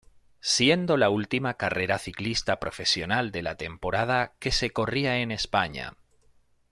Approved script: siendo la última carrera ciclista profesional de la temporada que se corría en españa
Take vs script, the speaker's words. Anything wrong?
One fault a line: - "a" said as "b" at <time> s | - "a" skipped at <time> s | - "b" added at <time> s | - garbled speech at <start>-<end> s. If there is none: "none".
none